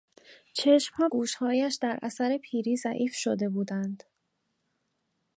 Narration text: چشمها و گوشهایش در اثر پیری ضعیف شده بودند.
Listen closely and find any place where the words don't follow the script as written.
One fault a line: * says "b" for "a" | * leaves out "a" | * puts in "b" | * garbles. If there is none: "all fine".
* leaves out "و"